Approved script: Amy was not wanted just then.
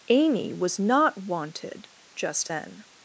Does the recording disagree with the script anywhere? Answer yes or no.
no